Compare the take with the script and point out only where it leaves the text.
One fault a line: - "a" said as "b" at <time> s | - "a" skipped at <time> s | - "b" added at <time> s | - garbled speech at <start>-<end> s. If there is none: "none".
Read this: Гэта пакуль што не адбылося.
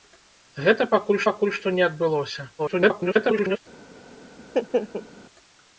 - "пакуль" added at 1.3 s
- garbled speech at 2.6-3.6 s